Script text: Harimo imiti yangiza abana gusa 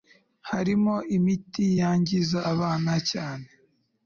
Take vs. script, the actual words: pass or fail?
fail